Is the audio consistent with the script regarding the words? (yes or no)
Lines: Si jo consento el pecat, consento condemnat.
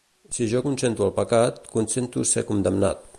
no